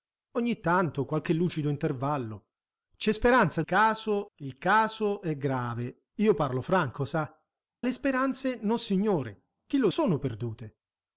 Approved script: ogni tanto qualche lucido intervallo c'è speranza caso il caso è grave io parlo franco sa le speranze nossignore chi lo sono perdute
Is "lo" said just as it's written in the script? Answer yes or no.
yes